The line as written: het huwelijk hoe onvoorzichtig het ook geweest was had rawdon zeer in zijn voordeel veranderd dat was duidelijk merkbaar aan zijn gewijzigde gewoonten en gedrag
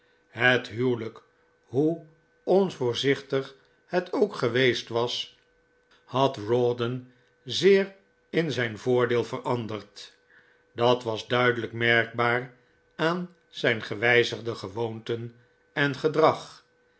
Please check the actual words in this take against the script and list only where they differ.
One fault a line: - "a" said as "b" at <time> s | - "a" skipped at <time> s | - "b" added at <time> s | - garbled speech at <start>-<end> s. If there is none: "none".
none